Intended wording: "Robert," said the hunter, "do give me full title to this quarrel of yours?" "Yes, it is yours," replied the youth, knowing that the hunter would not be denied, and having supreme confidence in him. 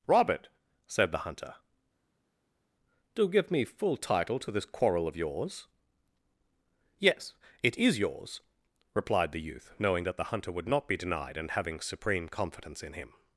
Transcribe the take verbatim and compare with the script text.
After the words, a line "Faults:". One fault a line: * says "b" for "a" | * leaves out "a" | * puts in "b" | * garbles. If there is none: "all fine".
"Robert," said the hunter, "do give me full title to this quarrel of yours?" "Yes, it is yours," replied the youth, knowing that the hunter would not be denied, and having supreme confidence in him.
Faults:
all fine